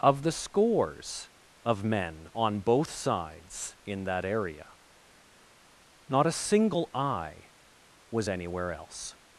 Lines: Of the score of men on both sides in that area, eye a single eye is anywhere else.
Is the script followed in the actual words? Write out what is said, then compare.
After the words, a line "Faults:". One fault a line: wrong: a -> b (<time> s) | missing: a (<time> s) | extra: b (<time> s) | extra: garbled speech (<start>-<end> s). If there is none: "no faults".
Of the scores of men on both sides in that area, not a single eye was anywhere else.
Faults:
wrong: score -> scores (0.3 s)
wrong: eye -> not (6.1 s)
wrong: is -> was (8.1 s)